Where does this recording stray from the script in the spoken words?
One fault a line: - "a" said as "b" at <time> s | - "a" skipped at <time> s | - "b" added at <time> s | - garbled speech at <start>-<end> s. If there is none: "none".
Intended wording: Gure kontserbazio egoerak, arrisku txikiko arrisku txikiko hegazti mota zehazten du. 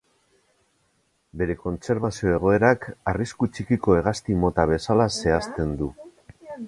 - "Gure" said as "Bere" at 1.4 s
- "arrisku txikiko" skipped at 4.0 s
- "bezala" added at 4.7 s